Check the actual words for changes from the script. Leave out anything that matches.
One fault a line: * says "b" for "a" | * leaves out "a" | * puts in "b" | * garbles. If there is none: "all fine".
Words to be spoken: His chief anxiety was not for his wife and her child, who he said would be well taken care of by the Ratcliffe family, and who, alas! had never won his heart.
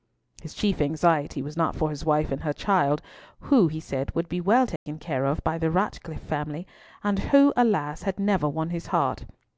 all fine